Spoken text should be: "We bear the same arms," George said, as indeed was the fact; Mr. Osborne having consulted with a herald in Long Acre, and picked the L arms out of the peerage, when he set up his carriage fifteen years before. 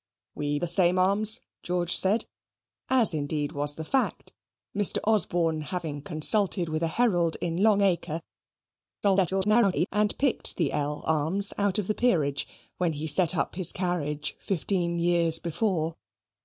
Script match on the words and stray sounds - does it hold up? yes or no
no